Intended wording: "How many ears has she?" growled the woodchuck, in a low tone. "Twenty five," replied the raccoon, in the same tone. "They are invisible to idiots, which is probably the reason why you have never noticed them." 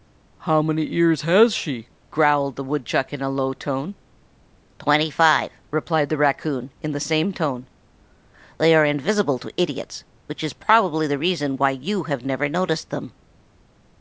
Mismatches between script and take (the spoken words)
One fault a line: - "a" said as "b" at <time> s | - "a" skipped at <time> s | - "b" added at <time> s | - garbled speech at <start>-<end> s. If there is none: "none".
none